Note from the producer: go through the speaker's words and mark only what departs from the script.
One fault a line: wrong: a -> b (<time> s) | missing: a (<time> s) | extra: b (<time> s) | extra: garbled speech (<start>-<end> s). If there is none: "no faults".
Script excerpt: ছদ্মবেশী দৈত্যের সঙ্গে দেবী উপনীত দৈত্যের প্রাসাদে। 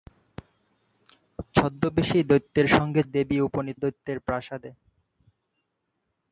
no faults